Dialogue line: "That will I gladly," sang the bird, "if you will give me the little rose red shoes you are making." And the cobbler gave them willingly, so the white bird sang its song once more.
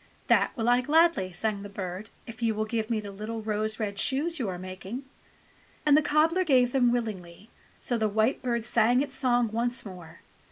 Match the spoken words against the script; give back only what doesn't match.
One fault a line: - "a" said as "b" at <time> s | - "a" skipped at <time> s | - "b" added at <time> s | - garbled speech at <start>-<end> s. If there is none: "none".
none